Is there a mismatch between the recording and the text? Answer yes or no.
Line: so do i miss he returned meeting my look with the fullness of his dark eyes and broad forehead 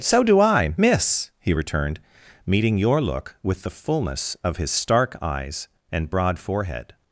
yes